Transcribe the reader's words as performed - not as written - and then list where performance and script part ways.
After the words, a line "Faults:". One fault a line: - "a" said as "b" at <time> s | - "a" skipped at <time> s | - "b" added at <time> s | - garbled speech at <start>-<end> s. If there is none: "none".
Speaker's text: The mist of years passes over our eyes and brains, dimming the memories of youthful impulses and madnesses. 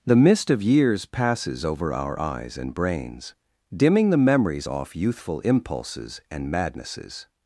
The mist of years passes over our eyes and brains, dimming the memories off youthful impulses and madnesses.
Faults:
- "of" said as "off" at 4.6 s